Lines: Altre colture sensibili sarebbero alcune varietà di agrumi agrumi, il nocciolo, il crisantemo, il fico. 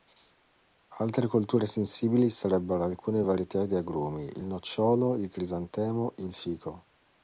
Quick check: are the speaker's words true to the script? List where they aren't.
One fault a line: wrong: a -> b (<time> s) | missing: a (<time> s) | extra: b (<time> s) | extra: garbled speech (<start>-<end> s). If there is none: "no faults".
missing: agrumi (4.2 s)